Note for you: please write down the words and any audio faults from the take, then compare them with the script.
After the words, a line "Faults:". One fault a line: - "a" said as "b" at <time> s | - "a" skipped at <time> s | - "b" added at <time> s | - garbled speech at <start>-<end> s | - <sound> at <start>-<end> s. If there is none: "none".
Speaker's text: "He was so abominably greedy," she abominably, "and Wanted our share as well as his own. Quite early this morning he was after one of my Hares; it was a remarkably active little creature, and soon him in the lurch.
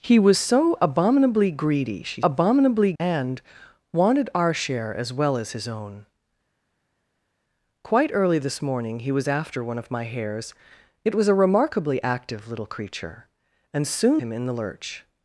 "He was so abominably greedy," she abominably, "and Wanted our share as well as his own. Quite early this morning he was after one of my Hares; it was a remarkably active little creature, and soon him in the lurch.
Faults:
none